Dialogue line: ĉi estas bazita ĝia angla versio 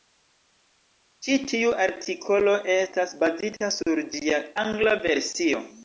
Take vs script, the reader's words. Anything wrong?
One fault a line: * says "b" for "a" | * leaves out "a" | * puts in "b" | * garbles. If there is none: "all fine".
* puts in "tiu artikolo"
* puts in "sur"